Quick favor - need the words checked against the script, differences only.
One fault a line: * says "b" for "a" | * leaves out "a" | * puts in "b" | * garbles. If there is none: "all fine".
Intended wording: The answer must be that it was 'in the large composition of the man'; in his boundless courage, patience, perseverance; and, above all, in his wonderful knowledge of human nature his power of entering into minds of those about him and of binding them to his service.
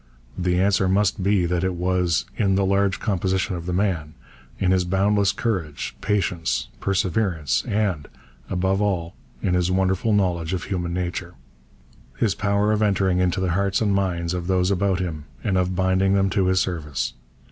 * puts in "the hearts and"